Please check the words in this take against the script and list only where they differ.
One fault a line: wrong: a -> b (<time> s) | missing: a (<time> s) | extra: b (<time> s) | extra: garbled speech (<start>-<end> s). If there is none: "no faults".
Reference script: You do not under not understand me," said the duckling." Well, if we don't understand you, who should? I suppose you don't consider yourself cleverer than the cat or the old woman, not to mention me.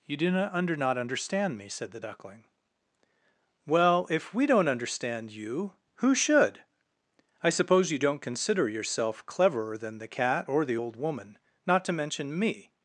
no faults